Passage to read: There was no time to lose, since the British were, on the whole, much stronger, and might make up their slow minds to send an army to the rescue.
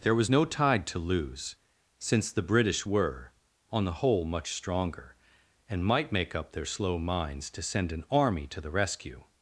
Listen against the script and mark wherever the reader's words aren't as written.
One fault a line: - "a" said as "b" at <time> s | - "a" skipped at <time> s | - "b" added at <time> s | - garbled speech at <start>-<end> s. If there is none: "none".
- "time" said as "tide" at 0.5 s